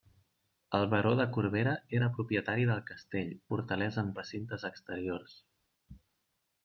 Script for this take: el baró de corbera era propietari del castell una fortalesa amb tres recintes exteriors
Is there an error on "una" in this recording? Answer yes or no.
yes